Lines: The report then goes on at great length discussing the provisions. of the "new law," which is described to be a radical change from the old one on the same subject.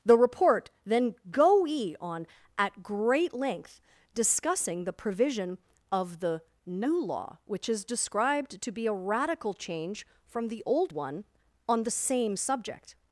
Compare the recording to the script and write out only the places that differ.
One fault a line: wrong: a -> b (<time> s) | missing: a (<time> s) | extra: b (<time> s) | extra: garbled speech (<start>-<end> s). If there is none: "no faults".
wrong: goes -> goe (1.3 s)
wrong: provisions -> provision (4.9 s)